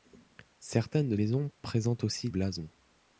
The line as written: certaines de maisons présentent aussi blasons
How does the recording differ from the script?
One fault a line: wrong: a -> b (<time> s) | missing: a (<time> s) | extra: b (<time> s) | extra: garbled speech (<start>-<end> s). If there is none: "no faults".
no faults